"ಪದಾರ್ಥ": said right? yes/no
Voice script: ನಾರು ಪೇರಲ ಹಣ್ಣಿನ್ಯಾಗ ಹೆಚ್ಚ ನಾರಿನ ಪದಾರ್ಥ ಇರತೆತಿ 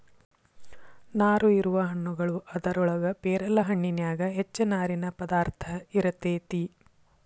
yes